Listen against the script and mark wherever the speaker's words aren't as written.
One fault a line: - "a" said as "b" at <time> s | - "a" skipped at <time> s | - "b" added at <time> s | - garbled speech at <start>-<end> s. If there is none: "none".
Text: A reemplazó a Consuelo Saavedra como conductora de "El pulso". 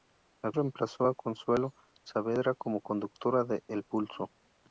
none